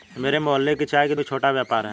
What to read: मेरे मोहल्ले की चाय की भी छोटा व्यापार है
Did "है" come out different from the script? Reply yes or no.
no